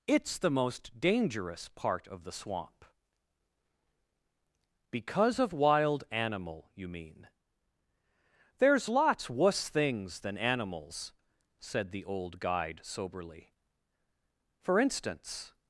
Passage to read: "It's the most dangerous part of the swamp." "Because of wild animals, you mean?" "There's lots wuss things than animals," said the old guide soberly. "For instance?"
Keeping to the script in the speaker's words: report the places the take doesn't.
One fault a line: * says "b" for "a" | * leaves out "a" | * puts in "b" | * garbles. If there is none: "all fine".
* says "animal" for "animals"